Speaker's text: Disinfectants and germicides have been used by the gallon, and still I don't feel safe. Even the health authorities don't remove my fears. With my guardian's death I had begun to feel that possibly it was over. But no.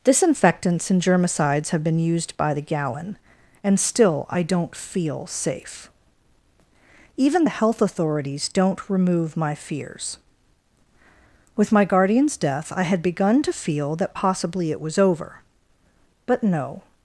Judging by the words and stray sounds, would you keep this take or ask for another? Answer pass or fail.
pass